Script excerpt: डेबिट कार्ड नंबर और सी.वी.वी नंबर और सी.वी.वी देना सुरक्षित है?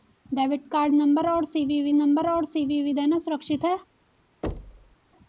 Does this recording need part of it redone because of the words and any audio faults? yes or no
yes